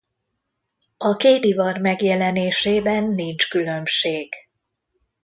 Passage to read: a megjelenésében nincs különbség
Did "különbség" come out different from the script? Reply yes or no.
no